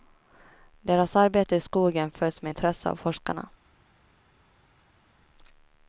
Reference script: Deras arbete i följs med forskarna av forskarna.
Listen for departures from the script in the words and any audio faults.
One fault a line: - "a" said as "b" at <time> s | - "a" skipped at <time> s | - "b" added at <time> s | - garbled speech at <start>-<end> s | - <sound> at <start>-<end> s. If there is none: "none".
- "skogen" added at 1.6 s
- "forskarna" said as "intresse" at 2.5 s